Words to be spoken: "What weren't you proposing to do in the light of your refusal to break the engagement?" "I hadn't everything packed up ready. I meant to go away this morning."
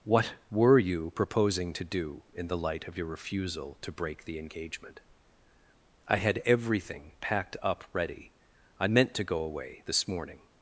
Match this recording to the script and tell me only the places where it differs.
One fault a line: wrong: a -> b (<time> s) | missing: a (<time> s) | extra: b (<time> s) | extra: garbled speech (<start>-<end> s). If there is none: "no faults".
wrong: weren't -> were (0.5 s)
wrong: hadn't -> had (6.2 s)